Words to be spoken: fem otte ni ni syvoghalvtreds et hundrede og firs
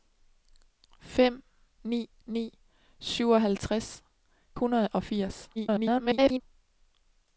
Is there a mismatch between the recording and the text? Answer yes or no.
yes